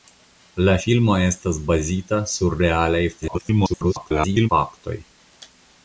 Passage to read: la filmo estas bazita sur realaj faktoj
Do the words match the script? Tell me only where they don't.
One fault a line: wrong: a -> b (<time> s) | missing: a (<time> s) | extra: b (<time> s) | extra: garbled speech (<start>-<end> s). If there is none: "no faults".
extra: garbled speech (3.2-4.5 s)